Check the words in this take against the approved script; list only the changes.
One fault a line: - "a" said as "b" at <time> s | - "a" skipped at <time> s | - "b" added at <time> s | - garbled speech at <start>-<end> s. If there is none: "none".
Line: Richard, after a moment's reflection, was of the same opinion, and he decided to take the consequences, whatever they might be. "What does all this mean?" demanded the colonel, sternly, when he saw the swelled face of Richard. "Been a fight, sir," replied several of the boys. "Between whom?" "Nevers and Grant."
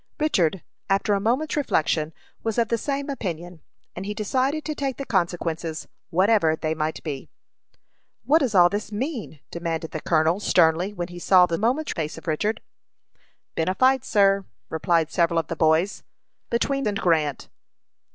- "swelled" said as "moment's" at 11.6 s
- "whom Nevers" skipped at 16.9 s